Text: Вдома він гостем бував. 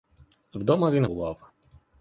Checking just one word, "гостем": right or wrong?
wrong